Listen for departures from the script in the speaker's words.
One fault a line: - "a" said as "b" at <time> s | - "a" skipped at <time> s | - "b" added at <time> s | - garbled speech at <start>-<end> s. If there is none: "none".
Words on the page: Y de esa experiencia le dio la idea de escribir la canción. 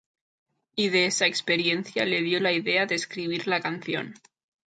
none